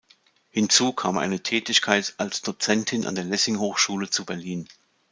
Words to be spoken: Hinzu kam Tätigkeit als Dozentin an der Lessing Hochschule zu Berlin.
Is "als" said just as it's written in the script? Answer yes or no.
yes